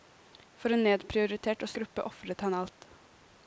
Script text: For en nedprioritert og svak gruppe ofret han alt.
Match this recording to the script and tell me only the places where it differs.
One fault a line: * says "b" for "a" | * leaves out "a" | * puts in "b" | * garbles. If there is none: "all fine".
* leaves out "svak"